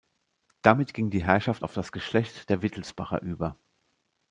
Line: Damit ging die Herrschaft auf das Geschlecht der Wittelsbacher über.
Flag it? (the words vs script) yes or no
no